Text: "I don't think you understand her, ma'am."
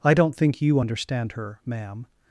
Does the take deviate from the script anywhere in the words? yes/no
no